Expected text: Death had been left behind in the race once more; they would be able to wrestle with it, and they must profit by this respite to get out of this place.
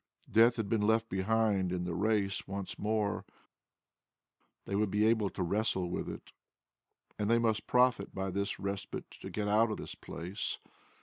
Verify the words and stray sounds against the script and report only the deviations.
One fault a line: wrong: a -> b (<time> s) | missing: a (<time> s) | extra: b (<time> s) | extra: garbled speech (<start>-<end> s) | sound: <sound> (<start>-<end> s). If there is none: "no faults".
no faults